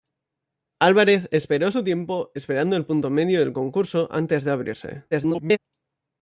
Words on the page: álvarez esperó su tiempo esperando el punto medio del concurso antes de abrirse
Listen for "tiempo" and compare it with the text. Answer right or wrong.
right